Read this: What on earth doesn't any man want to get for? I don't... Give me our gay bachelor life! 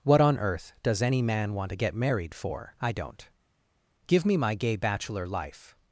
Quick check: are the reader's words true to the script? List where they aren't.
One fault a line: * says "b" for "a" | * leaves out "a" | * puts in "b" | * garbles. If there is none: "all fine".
* says "does" for "doesn't"
* puts in "married"
* says "my" for "our"